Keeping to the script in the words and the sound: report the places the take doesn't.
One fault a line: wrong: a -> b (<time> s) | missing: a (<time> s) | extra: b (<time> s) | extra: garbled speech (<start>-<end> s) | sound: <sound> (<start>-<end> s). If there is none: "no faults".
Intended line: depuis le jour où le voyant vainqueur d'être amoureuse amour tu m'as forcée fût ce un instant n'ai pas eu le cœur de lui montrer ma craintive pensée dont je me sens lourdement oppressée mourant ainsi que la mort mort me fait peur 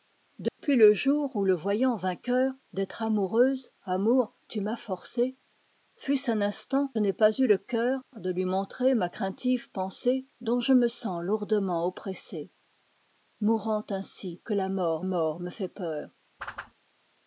sound: dropout (0.5-0.6 s)
sound: whoosh (16.4-16.7 s)